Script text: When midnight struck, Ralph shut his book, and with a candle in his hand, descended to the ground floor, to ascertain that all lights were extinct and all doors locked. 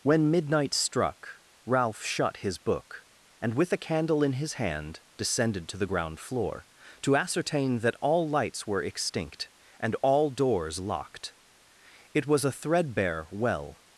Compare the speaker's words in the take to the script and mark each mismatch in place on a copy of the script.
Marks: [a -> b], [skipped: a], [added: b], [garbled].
When midnight struck, Ralph shut his book, and with a candle in his hand, descended to the ground floor, to ascertain that all lights were extinct and all doors locked. [added: It was a threadbare well]